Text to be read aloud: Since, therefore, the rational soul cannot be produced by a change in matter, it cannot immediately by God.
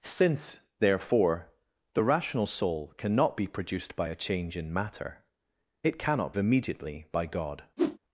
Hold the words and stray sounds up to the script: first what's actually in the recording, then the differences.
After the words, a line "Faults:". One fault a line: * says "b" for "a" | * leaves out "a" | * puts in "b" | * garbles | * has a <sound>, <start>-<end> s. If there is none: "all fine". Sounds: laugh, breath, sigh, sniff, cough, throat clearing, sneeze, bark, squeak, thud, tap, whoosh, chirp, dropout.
Since, therefore, the rational soul cannot be produced by a change in matter, it cannot immediately by God.
Faults:
* has a whoosh, 7.8-8.0 s